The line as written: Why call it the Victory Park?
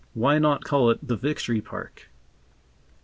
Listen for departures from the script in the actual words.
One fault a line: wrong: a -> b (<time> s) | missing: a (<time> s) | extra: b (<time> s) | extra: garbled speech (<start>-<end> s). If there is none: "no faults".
extra: not (0.4 s)